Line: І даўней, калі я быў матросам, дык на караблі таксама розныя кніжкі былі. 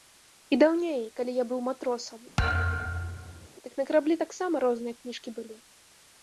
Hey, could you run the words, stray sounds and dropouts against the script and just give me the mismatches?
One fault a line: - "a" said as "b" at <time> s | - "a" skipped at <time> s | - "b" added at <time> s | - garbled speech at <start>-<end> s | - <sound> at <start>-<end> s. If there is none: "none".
- thud at 2.4-3.5 s